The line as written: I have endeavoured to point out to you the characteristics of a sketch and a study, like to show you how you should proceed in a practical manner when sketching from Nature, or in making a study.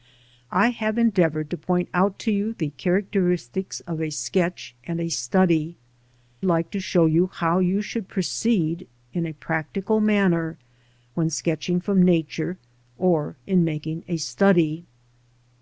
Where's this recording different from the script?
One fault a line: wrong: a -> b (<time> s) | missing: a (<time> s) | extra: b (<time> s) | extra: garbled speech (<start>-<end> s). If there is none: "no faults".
no faults